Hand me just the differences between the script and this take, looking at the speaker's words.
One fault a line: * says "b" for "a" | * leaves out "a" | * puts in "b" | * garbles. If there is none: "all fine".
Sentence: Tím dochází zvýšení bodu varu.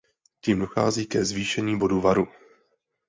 * puts in "ke"